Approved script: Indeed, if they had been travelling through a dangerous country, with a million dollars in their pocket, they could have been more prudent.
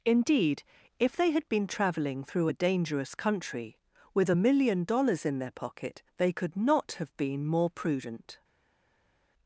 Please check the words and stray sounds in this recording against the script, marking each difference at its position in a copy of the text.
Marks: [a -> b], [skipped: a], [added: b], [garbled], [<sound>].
Indeed, if they had been travelling through a dangerous country, with a million dollars in their pocket, they could [added: not] have been more prudent.